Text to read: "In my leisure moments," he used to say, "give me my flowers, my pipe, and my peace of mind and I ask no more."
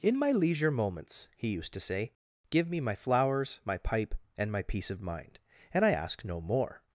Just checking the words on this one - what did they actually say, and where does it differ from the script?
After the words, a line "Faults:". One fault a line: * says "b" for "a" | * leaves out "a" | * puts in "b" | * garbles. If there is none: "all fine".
"In my leisure moments," he used to say, "give me my flowers, my pipe, and my peace of mind and I ask no more."
Faults:
all fine